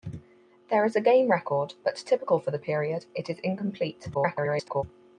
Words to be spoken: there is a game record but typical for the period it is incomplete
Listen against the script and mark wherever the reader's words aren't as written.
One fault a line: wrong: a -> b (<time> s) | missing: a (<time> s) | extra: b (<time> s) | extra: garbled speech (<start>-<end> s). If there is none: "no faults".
extra: garbled speech (4.1-4.8 s)